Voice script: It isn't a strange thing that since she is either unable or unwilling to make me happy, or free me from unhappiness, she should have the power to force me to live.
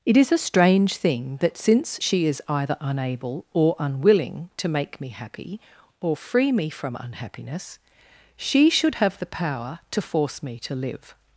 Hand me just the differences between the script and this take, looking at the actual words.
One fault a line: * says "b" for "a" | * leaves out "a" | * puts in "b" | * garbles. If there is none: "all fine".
* says "is" for "isn't"